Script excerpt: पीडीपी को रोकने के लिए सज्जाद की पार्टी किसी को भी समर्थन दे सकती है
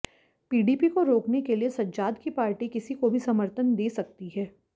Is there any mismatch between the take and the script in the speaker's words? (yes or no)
no